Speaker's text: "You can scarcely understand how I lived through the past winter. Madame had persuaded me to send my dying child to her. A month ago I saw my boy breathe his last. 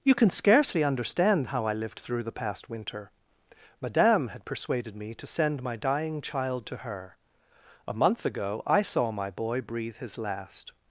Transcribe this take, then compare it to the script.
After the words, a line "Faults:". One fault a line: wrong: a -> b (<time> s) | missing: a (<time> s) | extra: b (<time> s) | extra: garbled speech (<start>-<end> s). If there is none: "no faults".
"You can scarcely understand how I lived through the past winter. Madame had persuaded me to send my dying child to her. A month ago I saw my boy breathe his last.
Faults:
no faults